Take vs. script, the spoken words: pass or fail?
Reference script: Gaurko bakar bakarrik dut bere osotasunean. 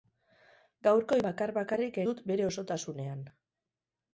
pass